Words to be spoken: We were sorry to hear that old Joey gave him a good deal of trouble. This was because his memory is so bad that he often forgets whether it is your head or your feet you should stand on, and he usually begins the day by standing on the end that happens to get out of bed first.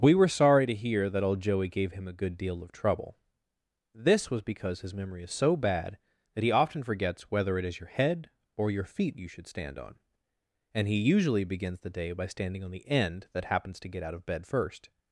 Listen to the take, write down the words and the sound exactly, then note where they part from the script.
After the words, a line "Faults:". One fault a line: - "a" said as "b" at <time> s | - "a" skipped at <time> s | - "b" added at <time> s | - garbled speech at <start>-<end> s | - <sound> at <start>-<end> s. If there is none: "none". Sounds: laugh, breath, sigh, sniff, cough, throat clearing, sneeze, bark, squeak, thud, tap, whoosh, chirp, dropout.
We were sorry to hear that old Joey gave him a good deal of trouble. This was because his memory is so bad that he often forgets whether it is your head or your feet you should stand on, and he usually begins the day by standing on the end that happens to get out of bed first.
Faults:
none